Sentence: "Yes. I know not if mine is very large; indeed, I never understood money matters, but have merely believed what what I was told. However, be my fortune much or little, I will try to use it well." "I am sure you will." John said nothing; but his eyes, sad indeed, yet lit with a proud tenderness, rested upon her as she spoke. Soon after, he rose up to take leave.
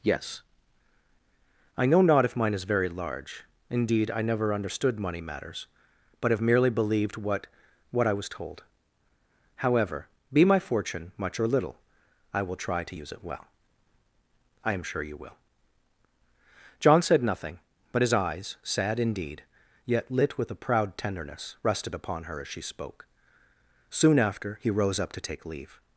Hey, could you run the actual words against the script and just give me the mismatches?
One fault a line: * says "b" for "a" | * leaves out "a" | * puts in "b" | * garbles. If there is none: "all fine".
all fine